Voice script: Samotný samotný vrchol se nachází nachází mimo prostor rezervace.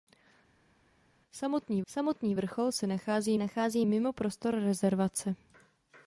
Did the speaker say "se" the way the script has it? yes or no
yes